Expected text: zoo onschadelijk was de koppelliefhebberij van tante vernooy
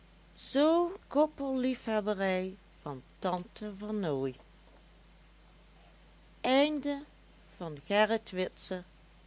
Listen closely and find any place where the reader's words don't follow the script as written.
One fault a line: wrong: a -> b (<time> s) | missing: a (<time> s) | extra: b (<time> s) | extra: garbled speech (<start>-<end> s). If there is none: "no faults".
missing: onschadelijk was de (1.0 s)